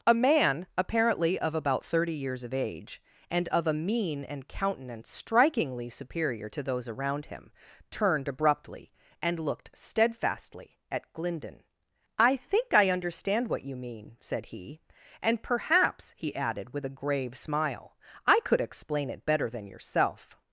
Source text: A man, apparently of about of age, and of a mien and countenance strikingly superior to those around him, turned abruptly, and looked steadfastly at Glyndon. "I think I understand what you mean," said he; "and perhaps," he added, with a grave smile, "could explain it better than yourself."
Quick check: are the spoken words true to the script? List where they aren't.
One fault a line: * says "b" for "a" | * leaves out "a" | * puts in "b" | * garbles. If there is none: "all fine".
* puts in "thirty years"
* puts in "I"